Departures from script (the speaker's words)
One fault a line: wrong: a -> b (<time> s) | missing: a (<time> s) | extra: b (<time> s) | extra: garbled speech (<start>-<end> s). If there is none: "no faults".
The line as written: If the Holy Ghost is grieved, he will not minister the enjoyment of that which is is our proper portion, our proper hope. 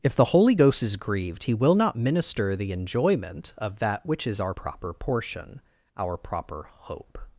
missing: is (4.4 s)